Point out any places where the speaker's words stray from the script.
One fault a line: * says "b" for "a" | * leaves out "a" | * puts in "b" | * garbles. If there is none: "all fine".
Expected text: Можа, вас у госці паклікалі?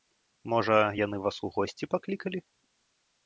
* puts in "яны"